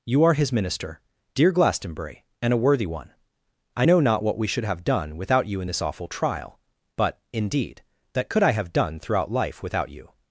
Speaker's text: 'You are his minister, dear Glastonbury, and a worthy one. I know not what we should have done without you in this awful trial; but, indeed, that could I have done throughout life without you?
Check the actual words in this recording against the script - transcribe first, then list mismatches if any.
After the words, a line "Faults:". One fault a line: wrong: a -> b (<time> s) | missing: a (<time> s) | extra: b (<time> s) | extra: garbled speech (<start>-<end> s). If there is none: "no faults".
'You are his minister, dear Glastonbury, and a worthy one. I know not what we should have done without you in this awful trial; but, indeed, that could I have done throughout life without you?
Faults:
no faults